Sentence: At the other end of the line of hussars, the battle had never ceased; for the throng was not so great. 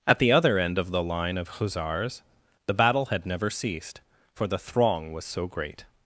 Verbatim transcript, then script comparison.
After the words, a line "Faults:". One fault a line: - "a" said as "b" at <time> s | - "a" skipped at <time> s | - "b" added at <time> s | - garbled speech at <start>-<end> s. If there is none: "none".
At the other end of the line of hussars, the battle had never ceased; for the throng was so great.
Faults:
- "not" skipped at 5.2 s